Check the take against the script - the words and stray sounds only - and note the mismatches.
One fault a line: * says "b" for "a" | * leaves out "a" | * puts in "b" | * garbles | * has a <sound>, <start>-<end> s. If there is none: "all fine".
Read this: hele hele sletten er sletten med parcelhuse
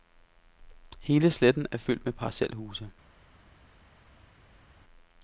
* leaves out "hele"
* says "fyldt" for "sletten"